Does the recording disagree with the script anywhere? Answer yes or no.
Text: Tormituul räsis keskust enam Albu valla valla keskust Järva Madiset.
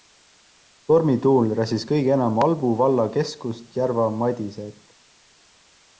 yes